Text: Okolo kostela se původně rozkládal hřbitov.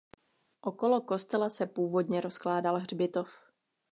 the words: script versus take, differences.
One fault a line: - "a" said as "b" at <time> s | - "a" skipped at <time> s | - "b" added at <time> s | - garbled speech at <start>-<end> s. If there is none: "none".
none